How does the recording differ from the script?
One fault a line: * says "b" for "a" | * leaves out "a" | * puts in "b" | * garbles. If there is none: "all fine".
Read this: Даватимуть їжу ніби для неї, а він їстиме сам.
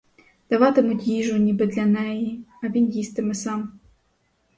all fine